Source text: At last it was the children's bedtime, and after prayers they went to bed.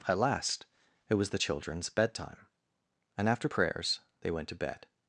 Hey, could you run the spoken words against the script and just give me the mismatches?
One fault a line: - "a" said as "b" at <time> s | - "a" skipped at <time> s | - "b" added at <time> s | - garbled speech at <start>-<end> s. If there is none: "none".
none